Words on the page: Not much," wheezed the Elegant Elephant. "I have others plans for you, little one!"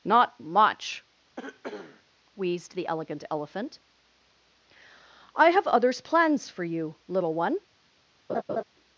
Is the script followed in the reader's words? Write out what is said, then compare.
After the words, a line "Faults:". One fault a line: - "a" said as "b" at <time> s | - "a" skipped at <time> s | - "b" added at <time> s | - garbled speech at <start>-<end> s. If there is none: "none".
Not much," wheezed the Elegant Elephant. "I have others plans for you, little one!"
Faults:
none